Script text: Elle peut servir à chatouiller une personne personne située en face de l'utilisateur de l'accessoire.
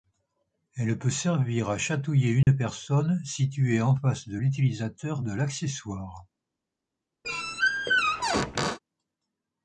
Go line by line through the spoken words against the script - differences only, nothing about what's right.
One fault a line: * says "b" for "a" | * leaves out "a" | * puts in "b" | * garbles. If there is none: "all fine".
* leaves out "personne"